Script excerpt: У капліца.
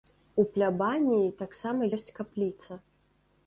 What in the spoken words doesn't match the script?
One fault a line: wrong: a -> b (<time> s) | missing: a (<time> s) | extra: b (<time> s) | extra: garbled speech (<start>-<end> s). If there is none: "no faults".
extra: плябаніі таксама ёсць (0.6 s)